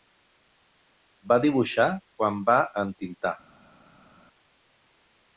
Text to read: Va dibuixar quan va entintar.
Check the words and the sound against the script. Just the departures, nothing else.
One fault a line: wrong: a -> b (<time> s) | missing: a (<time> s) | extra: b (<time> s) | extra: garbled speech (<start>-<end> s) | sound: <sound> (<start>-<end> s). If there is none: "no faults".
no faults